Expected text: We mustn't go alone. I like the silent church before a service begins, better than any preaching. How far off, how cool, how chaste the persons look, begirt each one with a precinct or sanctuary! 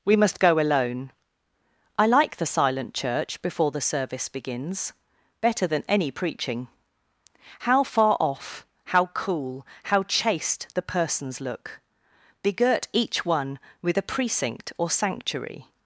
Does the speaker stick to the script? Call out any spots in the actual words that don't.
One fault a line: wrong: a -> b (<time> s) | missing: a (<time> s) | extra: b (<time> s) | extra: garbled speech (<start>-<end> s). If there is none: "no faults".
wrong: mustn't -> must (0.1 s)
wrong: a -> the (3.7 s)